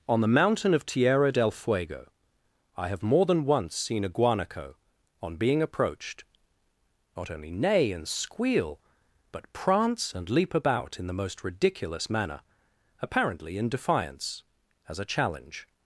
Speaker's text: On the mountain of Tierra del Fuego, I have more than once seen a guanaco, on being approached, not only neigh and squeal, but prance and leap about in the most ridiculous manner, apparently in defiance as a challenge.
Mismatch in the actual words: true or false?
false